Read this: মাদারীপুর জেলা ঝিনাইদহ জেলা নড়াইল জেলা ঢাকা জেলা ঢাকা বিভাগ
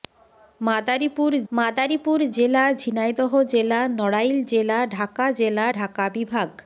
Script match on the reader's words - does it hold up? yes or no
no